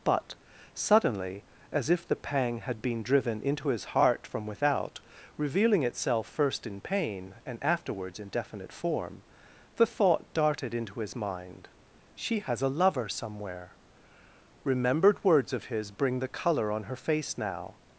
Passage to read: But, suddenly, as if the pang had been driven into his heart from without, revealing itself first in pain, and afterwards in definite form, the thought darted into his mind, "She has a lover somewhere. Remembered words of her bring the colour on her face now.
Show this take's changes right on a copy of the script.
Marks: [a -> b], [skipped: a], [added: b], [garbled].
But, suddenly, as if the pang had been driven into his heart from without, revealing itself first in pain, and afterwards in definite form, the thought darted into his mind, "She has a lover somewhere. Remembered words of [her -> his] bring the colour on her face now.